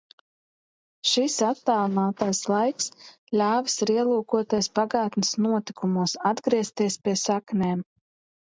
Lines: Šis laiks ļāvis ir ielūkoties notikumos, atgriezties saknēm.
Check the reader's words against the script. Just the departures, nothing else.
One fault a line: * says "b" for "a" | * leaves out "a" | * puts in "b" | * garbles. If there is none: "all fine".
* puts in "attālinātais"
* puts in "pagātnes"
* puts in "pie"